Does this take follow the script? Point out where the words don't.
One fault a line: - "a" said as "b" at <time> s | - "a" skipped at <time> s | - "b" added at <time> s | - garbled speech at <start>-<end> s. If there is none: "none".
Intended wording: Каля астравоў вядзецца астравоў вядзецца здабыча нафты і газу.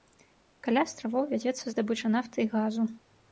- "астравоў вядзецца" skipped at 1.6 s